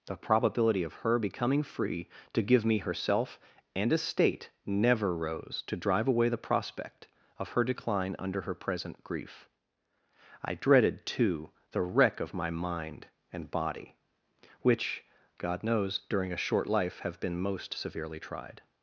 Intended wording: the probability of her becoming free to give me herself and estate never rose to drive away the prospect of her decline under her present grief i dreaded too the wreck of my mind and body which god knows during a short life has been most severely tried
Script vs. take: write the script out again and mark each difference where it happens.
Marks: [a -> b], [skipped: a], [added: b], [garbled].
the probability of her becoming free to give me herself and estate never rose to drive away the prospect of her decline under her present grief i dreaded too the wreck of my mind and body which god knows during a short life [has -> have] been most severely tried